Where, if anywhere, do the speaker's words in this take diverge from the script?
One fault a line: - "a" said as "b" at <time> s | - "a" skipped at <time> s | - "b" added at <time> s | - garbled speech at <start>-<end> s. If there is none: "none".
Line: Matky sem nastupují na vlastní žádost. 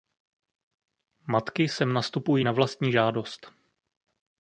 none